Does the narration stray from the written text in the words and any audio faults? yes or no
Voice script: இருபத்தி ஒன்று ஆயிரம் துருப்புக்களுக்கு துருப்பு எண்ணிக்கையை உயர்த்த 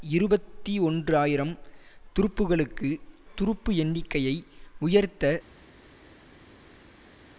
no